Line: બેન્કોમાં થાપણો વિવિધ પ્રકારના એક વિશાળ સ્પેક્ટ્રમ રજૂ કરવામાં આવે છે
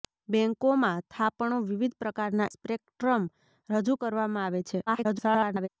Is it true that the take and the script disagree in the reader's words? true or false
true